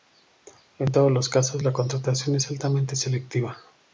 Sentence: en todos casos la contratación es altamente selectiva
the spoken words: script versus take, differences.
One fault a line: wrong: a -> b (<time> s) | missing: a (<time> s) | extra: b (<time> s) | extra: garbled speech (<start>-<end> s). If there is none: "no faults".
extra: los (1.1 s)